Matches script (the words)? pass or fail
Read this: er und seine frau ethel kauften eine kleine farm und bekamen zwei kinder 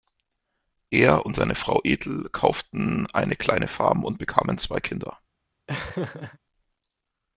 pass